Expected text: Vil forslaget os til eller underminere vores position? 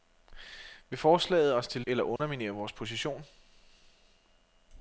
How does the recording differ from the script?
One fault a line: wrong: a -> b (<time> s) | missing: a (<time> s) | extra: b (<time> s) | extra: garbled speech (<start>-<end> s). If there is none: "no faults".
no faults